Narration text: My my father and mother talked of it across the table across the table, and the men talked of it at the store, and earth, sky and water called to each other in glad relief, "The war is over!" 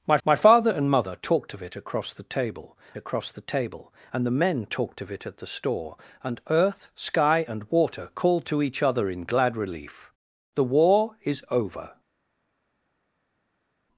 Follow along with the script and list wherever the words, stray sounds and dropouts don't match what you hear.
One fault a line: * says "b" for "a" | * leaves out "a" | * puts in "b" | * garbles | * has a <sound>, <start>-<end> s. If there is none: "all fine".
all fine